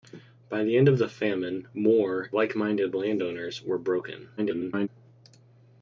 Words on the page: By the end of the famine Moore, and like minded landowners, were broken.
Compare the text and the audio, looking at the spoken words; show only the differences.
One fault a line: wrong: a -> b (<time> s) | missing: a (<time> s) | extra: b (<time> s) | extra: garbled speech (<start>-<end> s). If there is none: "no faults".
missing: and (2.3 s)
extra: garbled speech (4.4-4.9 s)